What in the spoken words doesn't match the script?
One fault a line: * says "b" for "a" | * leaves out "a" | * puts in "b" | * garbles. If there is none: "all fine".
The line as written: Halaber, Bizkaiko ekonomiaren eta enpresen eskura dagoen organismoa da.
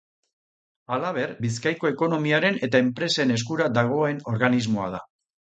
all fine